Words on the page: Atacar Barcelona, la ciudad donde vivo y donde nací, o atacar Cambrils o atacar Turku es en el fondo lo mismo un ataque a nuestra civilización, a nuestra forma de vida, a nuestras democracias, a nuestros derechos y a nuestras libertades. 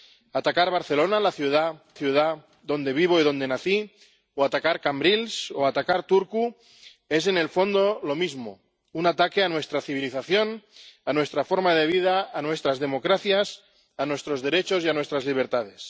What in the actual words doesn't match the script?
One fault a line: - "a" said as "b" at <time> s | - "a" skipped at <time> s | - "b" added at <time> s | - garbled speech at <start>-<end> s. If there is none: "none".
- "ciudad" added at 1.9 s